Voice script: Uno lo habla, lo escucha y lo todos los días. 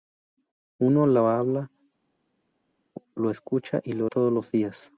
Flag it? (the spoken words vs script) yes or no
no